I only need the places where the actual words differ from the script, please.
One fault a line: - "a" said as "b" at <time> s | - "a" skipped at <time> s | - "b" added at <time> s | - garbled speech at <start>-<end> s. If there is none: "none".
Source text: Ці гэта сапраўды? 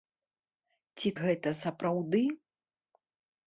none